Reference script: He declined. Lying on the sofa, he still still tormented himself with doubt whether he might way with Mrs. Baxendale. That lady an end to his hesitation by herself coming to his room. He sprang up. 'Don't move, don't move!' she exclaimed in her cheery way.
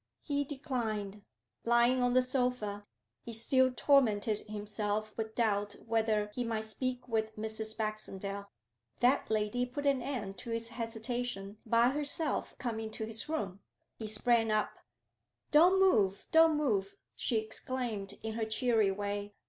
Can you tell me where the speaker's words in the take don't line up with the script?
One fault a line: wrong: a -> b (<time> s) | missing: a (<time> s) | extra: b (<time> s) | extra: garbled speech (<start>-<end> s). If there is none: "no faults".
missing: still (3.7 s)
wrong: way -> speak (6.6 s)
extra: put (9.7 s)